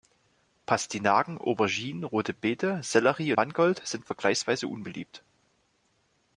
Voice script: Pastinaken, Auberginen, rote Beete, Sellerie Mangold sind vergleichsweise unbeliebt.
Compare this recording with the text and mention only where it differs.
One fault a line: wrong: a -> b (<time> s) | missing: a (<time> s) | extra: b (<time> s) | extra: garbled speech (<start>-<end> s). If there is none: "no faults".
no faults